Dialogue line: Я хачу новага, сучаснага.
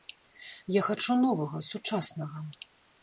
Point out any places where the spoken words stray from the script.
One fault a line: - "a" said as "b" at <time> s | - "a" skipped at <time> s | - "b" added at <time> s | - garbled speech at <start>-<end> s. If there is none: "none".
none